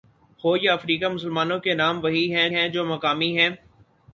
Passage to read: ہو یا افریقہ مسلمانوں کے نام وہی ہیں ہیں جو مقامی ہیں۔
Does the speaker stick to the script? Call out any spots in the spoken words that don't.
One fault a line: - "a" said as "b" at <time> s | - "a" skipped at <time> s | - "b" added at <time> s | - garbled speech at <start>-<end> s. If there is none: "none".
none